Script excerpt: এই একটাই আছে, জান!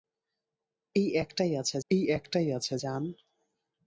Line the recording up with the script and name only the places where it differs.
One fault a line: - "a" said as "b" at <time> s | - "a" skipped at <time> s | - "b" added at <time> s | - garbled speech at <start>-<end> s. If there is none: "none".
- "এই একটাই আছে" added at 1.9 s